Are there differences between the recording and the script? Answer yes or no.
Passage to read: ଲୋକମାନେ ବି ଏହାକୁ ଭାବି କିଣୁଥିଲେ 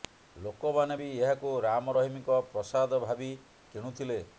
yes